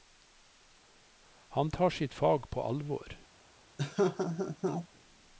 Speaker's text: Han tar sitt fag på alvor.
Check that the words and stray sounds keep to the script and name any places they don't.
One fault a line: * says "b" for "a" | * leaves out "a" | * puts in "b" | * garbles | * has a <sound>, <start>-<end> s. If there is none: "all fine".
* has a laugh, 3.8-4.9 s